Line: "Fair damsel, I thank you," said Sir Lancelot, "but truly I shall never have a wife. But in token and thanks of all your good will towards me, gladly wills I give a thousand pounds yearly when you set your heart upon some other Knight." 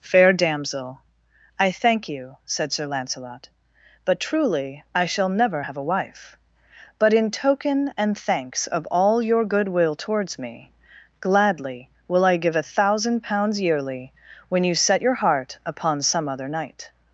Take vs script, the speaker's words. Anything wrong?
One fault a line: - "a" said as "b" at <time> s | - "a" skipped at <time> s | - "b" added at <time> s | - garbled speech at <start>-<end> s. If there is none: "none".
- "wills" said as "will" at 12.1 s